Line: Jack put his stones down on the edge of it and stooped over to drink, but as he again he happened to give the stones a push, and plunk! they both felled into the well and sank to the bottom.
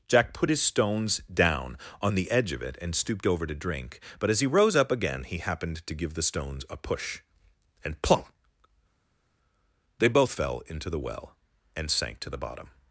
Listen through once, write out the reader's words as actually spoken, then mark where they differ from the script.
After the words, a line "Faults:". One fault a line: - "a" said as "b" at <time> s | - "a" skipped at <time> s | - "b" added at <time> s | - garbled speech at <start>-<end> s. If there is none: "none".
Jack put his stones down on the edge of it and stooped over to drink, but as he rose up again he happened to give the stones a push, and plunk! they both fell into the well and sank to the bottom.
Faults:
- "rose up" added at 4.5 s
- "felled" said as "fell" at 10.3 s